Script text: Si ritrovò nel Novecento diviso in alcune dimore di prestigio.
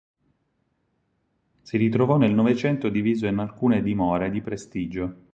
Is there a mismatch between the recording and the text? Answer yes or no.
no